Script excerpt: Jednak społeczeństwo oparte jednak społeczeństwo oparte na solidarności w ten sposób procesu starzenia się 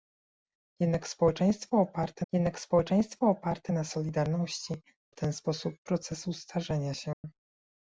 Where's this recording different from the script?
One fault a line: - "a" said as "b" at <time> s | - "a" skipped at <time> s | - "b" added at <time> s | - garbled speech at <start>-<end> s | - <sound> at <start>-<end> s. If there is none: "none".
- dropout at 7.1-7.2 s